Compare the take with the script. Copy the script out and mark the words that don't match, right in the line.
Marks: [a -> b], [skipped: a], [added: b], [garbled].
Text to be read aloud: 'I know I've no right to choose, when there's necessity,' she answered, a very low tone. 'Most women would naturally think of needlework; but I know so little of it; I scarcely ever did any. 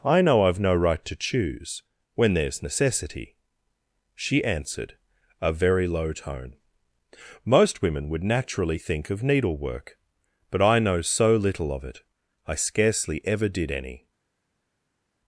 'I know I've no right to choose, when there's necessity,' she answered, a very low tone. 'Most women would naturally think of needlework; but I know so little of it; I scarcely ever did any.